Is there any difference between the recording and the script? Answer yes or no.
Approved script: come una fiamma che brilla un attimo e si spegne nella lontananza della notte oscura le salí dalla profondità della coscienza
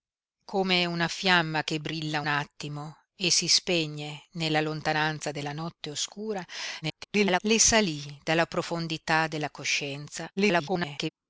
yes